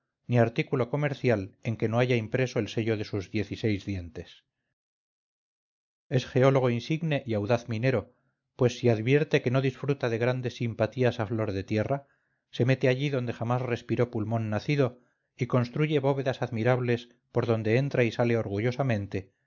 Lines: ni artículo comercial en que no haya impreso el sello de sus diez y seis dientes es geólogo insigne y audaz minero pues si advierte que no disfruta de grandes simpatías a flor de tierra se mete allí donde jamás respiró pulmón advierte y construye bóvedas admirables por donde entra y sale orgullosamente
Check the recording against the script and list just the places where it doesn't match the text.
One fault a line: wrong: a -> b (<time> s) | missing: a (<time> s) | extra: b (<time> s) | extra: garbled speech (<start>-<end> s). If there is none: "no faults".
wrong: advierte -> nacido (14.5 s)